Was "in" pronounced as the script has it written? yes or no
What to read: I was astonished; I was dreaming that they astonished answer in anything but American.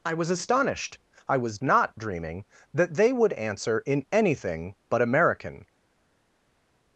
yes